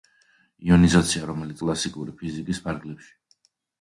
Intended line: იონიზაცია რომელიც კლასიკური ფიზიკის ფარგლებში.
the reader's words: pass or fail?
pass